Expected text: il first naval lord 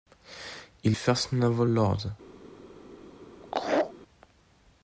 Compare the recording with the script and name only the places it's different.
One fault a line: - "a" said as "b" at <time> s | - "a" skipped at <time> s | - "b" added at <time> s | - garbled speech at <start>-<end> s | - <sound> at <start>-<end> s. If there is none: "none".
- laugh at 3.4-3.9 s